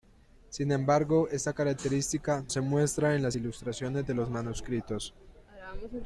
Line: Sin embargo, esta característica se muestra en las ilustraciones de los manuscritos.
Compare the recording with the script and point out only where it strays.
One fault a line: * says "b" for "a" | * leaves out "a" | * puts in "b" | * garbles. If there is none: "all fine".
all fine